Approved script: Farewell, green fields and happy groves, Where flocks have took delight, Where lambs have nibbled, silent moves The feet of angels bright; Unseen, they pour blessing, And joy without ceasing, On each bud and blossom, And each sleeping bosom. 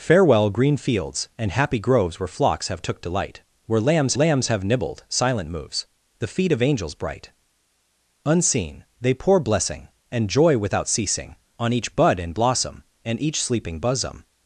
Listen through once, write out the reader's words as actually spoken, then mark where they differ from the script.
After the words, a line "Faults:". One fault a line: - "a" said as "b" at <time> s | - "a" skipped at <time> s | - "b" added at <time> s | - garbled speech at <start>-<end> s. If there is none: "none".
Farewell, green fields and happy groves, Where flocks have took delight, Where lambs lambs have nibbled, silent moves The feet of angels bright; Unseen, they pour blessing, And joy without ceasing, On each bud and blossom, And each sleeping bosom.
Faults:
- "lambs" added at 4.1 s